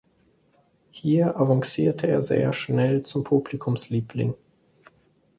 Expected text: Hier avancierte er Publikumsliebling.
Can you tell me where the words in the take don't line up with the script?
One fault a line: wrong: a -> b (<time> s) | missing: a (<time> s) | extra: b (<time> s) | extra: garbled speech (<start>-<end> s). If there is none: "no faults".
extra: sehr schnell zum (2.2 s)